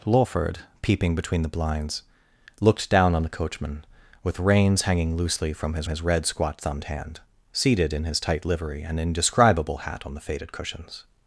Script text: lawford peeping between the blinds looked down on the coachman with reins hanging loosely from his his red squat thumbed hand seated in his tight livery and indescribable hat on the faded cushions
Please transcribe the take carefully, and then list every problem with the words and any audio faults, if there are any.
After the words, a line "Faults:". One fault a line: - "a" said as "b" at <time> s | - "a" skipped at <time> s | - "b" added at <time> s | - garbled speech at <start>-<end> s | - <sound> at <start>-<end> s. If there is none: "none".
lawford peeping between the blinds looked down on the coachman with reins hanging loosely from his his red squat thumbed hand seated in his tight livery and indescribable hat on the faded cushions
Faults:
none